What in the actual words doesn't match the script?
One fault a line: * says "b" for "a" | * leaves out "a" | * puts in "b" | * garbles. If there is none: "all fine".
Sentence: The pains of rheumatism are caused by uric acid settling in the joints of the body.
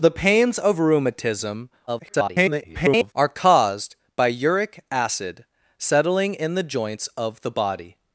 * garbles